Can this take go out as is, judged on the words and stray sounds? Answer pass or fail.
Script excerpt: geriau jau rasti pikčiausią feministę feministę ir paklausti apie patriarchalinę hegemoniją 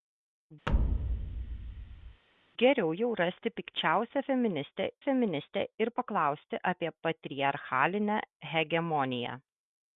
fail